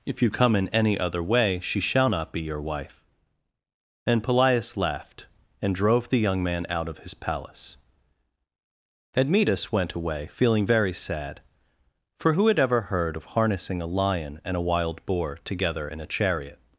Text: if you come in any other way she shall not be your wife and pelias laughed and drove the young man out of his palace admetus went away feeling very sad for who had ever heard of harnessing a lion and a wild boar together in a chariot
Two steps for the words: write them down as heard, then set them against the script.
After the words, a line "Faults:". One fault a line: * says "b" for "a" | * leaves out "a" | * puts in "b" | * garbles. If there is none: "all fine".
if you come in any other way she shall not be your wife and pelias laughed and drove the young man out of his palace admetus went away feeling very sad for who had ever heard of harnessing a lion and a wild boar together in a chariot
Faults:
all fine